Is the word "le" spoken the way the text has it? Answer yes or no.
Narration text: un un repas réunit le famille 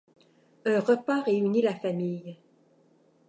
no